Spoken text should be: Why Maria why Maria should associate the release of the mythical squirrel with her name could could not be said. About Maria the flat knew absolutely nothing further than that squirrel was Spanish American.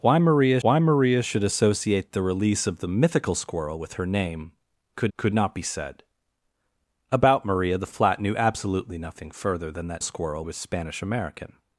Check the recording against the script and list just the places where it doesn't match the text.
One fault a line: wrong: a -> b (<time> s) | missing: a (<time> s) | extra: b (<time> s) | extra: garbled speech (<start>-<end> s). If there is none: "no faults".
no faults